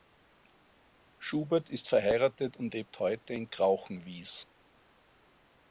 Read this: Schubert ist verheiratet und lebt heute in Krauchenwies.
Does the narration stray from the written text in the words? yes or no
no